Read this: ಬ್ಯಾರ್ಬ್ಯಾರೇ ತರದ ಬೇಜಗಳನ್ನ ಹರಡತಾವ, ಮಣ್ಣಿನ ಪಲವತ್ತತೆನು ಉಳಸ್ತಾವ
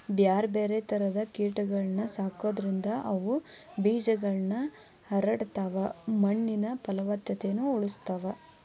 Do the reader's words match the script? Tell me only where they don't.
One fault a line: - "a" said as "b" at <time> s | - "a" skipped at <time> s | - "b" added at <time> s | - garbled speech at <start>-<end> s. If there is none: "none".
- "ಕೇಟಗಳನ್ನ ಸಾಕೋದ್ರಿಂದ ಅವು" added at 1.3 s